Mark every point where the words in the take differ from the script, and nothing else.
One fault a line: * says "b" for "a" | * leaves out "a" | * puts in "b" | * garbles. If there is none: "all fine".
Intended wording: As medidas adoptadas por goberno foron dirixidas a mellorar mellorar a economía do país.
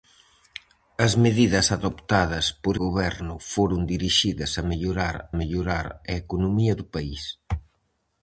all fine